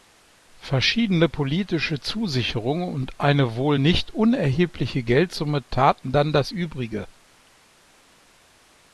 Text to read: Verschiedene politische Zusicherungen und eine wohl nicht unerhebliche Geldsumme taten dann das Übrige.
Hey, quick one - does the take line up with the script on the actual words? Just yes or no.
yes